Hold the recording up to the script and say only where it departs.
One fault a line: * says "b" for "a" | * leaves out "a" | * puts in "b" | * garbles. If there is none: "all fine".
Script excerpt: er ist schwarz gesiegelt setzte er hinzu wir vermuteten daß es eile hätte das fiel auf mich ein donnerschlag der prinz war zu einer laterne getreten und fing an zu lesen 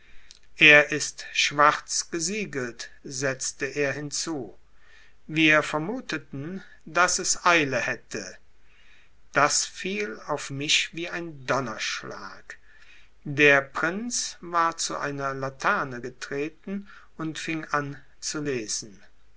* puts in "wie"